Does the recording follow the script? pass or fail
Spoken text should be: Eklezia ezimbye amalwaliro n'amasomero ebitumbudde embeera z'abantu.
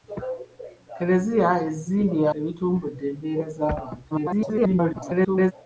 fail